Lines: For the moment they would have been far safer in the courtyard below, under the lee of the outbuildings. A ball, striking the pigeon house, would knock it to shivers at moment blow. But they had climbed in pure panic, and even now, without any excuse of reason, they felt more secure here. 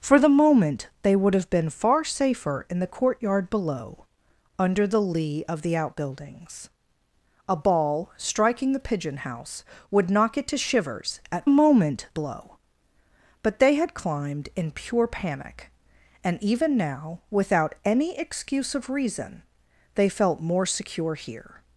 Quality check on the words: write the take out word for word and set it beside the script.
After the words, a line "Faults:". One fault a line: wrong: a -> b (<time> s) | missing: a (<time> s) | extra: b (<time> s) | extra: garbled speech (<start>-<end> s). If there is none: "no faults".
For the moment they would have been far safer in the courtyard below, under the lee of the outbuildings. A ball, striking the pigeon house, would knock it to shivers at moment blow. But they had climbed in pure panic, and even now, without any excuse of reason, they felt more secure here.
Faults:
no faults